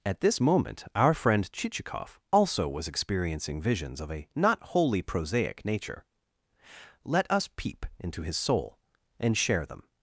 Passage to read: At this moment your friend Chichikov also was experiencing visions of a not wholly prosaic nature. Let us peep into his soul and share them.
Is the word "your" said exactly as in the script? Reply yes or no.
no